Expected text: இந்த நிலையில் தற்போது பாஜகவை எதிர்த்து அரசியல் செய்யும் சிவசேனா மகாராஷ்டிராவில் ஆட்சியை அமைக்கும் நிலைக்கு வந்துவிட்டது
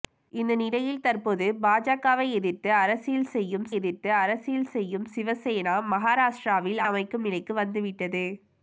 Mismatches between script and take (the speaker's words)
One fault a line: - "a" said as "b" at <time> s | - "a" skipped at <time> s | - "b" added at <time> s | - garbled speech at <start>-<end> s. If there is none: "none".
- "எதிர்த்து அரசியல் செய்யும்" added at 3.8 s
- "ஆட்சியை" skipped at 6.8 s